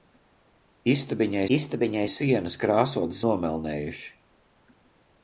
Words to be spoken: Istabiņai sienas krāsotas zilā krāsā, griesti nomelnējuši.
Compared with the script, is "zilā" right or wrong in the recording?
wrong